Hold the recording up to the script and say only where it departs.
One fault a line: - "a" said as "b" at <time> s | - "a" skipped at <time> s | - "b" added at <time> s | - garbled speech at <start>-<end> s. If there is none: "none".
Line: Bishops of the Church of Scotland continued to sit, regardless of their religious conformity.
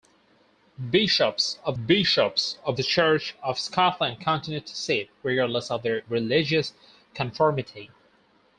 - "bishops of" added at 1.8 s